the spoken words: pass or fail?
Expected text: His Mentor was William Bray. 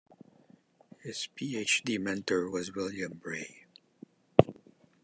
fail